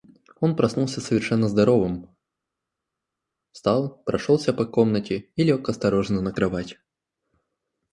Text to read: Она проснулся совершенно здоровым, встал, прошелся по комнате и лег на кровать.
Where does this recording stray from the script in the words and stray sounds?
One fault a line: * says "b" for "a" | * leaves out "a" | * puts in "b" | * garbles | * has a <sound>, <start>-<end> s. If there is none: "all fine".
* says "Он" for "Она"
* puts in "осторожно"